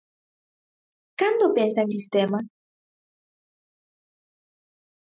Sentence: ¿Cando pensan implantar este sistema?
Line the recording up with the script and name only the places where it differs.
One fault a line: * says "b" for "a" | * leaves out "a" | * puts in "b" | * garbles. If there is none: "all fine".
* leaves out "implantar este"